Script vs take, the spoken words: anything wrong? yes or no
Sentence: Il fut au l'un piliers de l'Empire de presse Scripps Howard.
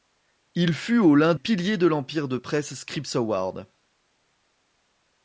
no